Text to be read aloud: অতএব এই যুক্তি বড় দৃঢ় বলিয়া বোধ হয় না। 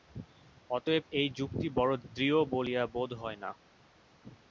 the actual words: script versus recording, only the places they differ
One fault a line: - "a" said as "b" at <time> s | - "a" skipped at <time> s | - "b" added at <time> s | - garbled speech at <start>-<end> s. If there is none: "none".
none